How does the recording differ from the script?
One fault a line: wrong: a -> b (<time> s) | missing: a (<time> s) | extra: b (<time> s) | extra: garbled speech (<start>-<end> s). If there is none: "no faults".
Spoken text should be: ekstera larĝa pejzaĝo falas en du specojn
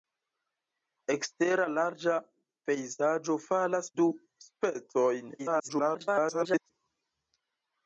missing: en (3.9 s)
extra: garbled speech (5.4-6.7 s)